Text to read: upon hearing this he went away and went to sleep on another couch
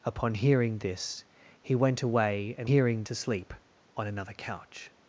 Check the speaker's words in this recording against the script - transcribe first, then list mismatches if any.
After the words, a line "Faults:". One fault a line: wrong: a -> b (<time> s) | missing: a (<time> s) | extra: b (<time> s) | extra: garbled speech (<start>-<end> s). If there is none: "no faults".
upon hearing this he went away and hearing to sleep on another couch
Faults:
wrong: went -> hearing (2.6 s)